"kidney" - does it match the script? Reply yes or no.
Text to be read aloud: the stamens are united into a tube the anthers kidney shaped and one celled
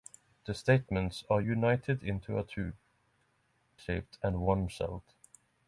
no